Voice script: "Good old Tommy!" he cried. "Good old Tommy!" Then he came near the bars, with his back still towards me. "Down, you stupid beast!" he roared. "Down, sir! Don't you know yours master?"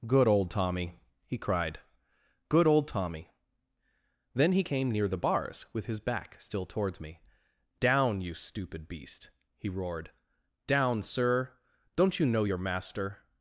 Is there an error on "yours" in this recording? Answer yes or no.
yes